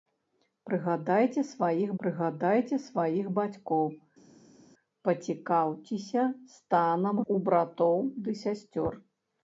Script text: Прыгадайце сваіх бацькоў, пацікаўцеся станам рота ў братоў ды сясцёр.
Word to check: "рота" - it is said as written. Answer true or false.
false